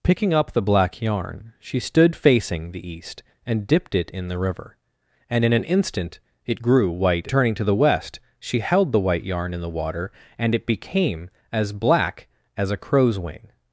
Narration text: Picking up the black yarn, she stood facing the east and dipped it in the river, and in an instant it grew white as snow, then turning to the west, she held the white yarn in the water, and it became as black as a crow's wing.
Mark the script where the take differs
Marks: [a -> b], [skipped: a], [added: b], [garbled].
Picking up the black yarn, she stood facing the east and dipped it in the river, and in an instant it grew white [skipped: as snow, then] turning to the west, she held the white yarn in the water, and it became as black as a crow's wing.